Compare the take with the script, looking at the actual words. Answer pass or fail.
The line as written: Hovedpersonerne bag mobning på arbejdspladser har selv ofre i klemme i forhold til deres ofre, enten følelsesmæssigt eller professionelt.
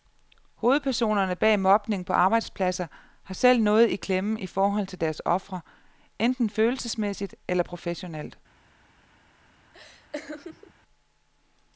fail